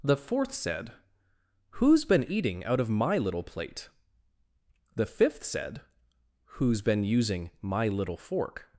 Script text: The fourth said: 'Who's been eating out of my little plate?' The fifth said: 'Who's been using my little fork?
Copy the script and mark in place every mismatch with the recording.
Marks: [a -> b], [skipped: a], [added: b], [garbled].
The fourth said: 'Who's been eating out of my little plate?' The fifth said: 'Who's been using my little fork?